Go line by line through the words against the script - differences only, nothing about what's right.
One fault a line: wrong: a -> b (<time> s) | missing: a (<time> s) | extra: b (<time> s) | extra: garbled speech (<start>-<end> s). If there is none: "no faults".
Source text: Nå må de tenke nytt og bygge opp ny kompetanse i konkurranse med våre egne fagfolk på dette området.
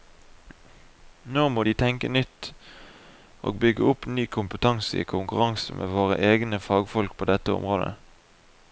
no faults